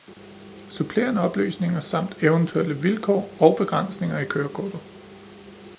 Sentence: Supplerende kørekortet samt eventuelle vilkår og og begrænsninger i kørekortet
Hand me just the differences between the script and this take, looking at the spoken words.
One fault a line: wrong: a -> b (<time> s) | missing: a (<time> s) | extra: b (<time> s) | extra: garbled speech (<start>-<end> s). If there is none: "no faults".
wrong: kørekortet -> oplysninger (1.2 s)
missing: og (3.5 s)